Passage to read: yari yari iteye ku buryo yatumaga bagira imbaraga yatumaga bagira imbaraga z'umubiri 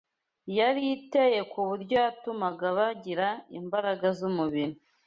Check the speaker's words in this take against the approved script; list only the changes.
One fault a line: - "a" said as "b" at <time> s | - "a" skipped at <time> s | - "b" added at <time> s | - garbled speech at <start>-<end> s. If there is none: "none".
- "yari" skipped at 0.8 s
- "yatumaga bagira imbaraga" skipped at 4.1 s